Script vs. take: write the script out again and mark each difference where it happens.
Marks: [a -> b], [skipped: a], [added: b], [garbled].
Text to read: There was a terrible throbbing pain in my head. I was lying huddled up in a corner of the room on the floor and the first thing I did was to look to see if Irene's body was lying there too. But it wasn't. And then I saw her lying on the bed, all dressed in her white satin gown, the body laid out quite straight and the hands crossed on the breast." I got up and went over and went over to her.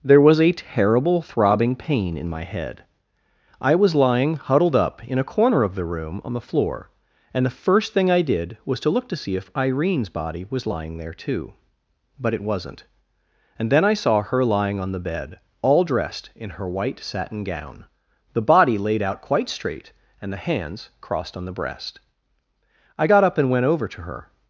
There was a terrible throbbing pain in my head. I was lying huddled up in a corner of the room on the floor and the first thing I did was to look to see if Irene's body was lying there too. But it wasn't. And then I saw her lying on the bed, all dressed in her white satin gown, the body laid out quite straight and the hands crossed on the breast." I got up and went over [skipped: and went over] to her.